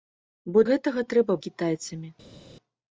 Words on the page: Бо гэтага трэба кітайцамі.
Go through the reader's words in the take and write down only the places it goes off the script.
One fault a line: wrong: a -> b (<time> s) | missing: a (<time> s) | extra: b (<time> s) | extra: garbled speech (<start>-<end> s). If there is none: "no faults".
no faults